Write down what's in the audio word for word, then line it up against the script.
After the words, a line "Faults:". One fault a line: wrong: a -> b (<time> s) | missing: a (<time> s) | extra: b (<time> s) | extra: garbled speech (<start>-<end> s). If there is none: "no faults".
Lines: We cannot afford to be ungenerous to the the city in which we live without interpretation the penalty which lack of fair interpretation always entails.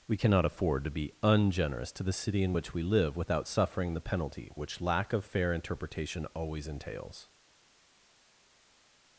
We cannot afford to be ungenerous to the city in which we live without suffering the penalty which lack of fair interpretation always entails.
Faults:
missing: the (2.1 s)
wrong: interpretation -> suffering (3.5 s)